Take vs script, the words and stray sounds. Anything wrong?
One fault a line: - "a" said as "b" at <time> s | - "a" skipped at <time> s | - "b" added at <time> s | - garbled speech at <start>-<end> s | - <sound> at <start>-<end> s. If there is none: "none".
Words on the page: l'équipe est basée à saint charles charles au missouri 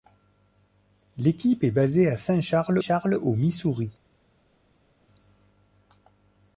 none